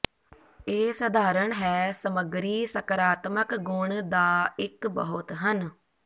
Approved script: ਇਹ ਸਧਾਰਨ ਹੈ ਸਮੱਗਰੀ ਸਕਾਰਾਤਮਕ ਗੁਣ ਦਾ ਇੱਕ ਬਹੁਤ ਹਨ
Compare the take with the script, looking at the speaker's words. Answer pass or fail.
pass